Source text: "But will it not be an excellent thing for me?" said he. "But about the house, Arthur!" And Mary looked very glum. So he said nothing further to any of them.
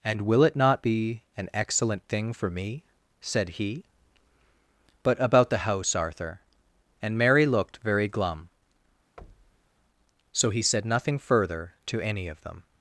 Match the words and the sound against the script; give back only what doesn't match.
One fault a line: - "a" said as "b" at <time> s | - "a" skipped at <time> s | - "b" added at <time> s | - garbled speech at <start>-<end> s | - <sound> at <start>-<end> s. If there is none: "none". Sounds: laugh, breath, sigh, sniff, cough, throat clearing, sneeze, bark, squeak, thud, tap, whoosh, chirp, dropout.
- "But" said as "And" at 0.0 s
- thud at 9.2-9.7 s